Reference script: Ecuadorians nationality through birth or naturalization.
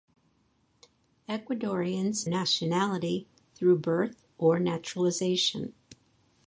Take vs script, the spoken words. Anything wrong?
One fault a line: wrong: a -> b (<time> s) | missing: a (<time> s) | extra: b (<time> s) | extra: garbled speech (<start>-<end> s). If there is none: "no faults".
no faults